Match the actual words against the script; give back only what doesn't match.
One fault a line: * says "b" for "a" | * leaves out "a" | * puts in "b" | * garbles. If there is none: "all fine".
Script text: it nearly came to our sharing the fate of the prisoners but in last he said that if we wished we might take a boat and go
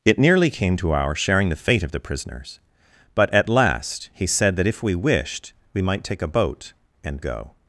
* says "at" for "in"